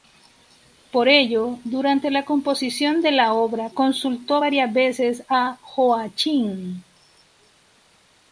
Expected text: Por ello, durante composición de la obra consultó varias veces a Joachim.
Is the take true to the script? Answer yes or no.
no